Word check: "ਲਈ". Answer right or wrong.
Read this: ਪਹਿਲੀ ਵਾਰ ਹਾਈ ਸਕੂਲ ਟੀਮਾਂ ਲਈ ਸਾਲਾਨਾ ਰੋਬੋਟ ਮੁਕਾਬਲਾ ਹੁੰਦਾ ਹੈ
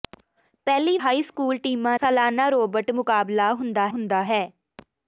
wrong